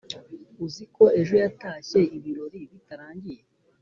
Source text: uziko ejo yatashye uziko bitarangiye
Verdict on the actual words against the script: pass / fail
fail